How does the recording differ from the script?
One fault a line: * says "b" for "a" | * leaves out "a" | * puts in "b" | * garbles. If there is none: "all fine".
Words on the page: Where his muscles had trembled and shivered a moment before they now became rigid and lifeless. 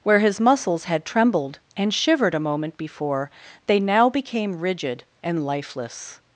all fine